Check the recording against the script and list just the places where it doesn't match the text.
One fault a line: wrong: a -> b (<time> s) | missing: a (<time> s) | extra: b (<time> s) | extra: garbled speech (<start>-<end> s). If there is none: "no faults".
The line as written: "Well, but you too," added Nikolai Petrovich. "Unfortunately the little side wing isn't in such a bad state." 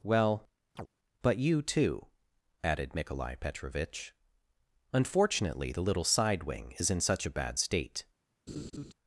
wrong: isn't -> is (6.8 s)